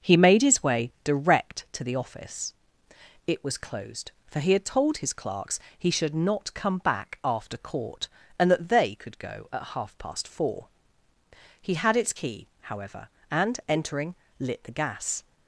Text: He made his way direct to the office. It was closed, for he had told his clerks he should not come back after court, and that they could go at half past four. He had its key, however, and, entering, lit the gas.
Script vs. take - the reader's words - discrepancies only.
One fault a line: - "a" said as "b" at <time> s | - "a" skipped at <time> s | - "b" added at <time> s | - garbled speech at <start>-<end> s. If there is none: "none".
none